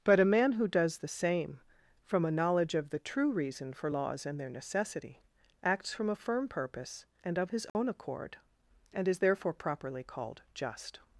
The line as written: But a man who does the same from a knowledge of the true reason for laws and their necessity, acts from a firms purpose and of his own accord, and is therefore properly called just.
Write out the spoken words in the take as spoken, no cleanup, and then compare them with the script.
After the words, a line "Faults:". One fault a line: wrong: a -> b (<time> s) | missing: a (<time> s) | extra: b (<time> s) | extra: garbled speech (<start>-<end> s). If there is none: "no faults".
But a man who does the same from a knowledge of the true reason for laws and their necessity, acts from a firm purpose and of his own accord, and is therefore properly called just.
Faults:
wrong: firms -> firm (6.2 s)